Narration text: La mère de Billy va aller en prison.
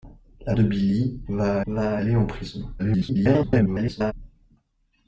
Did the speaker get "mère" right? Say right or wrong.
wrong